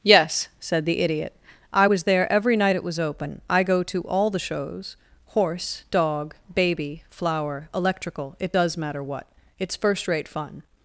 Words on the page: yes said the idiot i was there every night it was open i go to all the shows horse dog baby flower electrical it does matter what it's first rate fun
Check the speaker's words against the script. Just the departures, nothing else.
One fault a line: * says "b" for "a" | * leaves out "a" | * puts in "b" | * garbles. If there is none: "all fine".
all fine